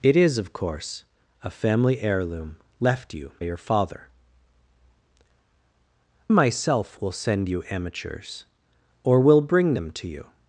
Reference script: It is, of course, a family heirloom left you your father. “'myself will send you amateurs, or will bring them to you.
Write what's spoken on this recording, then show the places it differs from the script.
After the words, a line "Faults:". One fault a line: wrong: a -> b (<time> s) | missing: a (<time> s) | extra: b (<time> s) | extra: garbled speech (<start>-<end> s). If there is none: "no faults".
It is, of course, a family heirloom left you your father. “'myself will send you amateurs, or will bring them to you.
Faults:
no faults